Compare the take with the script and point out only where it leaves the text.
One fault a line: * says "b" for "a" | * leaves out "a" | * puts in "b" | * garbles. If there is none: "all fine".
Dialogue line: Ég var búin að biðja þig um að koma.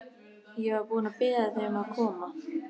all fine